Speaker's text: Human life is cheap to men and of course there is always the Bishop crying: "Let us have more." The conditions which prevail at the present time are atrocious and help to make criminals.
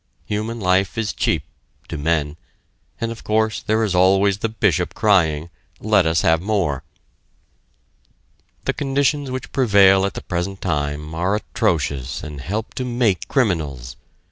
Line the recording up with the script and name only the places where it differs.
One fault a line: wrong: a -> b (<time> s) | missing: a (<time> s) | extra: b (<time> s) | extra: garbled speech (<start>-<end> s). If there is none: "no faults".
no faults